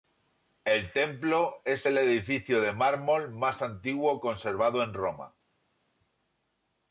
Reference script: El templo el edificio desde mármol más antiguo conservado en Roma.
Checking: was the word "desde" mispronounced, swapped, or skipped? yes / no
yes